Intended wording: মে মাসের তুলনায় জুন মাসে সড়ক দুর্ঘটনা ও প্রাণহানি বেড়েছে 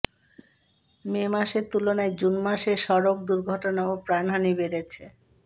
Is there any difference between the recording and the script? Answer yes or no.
no